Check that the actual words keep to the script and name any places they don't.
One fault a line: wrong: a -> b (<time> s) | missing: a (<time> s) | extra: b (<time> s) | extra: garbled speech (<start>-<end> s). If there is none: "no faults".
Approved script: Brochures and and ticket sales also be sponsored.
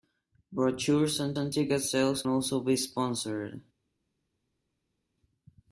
no faults